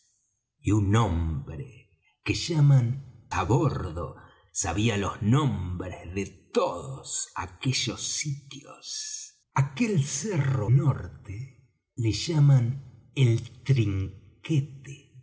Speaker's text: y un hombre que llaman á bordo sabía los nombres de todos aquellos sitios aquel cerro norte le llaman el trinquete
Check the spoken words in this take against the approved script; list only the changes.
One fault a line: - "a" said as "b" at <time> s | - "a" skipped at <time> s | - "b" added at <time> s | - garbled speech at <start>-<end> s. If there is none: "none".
none